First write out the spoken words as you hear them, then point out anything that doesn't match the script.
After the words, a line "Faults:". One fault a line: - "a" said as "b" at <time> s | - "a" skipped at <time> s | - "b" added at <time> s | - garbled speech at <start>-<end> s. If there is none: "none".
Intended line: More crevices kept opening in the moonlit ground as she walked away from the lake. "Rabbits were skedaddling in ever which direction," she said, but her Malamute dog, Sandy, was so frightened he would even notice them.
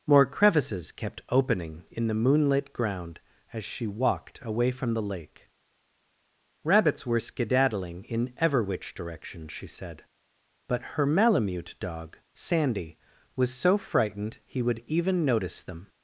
More crevices kept opening in the moonlit ground as she walked away from the lake. "Rabbits were skedaddling in ever which direction," she said, but her Malamute dog, Sandy, was so frightened he would even notice them.
Faults:
none